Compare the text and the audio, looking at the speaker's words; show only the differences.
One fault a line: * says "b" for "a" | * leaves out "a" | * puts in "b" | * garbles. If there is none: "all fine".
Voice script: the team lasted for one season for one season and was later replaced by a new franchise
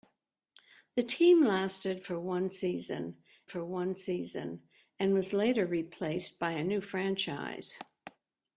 all fine